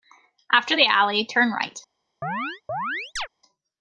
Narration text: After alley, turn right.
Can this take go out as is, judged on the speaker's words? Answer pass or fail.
fail